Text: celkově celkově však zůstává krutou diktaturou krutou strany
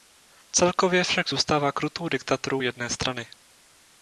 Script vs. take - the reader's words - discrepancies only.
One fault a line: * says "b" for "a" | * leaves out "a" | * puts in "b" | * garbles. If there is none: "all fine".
* leaves out "celkově"
* says "jedné" for "krutou"